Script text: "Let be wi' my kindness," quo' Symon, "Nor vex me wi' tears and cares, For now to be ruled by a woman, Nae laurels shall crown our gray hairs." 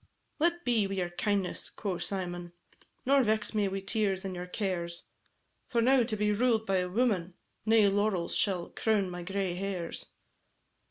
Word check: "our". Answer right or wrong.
wrong